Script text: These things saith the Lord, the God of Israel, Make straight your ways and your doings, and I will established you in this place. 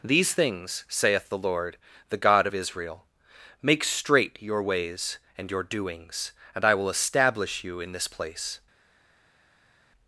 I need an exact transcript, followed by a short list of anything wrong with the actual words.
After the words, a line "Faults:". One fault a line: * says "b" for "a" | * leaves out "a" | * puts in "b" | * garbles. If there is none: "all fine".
These things saith the Lord, the God of Israel, Make straight your ways and your doings, and I will establish you in this place.
Faults:
* says "establish" for "established"